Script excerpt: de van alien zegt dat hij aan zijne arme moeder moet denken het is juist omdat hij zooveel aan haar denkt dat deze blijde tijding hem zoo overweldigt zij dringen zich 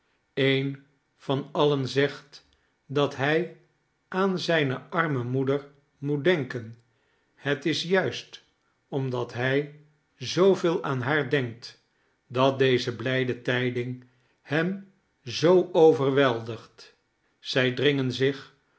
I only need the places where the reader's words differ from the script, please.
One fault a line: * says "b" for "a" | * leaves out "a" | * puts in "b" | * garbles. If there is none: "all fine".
* says "een" for "de"